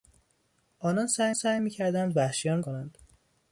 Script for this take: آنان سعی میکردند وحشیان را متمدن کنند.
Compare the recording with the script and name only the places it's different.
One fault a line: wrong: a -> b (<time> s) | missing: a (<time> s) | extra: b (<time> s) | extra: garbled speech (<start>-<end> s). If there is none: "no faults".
extra: سعی (1.3 s)
missing: را متمدن (2.6 s)